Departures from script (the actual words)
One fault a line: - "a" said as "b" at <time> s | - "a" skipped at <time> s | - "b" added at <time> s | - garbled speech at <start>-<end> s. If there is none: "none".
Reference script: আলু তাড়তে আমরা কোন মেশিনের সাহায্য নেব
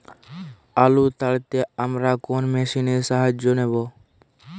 none